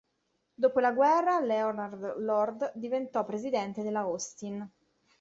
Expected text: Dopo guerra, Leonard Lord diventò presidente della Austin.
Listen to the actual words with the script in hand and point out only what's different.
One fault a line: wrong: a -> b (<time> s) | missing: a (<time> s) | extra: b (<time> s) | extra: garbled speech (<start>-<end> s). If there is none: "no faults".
extra: la (0.8 s)